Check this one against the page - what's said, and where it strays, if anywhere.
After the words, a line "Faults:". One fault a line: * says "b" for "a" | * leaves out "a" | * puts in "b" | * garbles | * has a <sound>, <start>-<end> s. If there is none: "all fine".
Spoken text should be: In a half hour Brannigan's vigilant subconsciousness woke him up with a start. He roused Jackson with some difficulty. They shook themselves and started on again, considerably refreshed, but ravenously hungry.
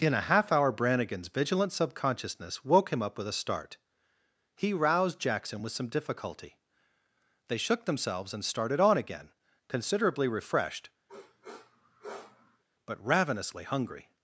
In a half hour Brannigan's vigilant subconsciousness woke him up with a start. He roused Jackson with some difficulty. They shook themselves and started on again, considerably refreshed, but ravenously hungry.
Faults:
* has a sniff, 11.1-12.6 s